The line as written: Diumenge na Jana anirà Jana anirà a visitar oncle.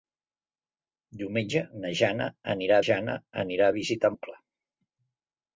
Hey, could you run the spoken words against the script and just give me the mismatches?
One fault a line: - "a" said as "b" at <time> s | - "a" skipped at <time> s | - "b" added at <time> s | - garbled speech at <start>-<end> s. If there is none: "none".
none